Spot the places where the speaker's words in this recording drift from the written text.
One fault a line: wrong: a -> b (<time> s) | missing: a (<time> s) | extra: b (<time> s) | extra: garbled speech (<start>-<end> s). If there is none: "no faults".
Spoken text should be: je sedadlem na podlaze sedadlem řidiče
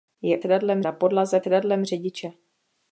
no faults